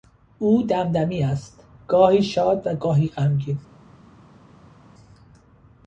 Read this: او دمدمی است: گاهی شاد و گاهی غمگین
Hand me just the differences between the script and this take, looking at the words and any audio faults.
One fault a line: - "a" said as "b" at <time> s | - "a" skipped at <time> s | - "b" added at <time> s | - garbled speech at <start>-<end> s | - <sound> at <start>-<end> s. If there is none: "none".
none